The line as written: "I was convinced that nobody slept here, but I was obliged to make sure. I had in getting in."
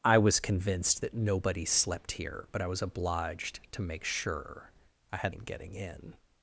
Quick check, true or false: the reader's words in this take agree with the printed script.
true